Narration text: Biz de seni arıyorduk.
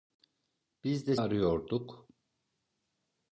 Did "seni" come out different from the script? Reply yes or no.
yes